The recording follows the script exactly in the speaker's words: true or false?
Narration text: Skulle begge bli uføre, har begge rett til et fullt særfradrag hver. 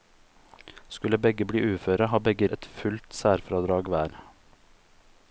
false